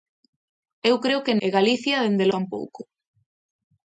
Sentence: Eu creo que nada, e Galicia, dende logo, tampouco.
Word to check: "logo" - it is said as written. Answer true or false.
false